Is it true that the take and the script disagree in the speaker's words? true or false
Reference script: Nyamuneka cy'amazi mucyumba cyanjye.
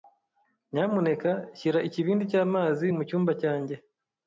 true